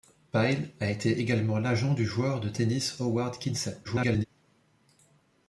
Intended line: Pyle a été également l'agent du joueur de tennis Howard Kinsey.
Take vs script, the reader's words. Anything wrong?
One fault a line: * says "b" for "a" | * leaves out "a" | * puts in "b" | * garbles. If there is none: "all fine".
* garbles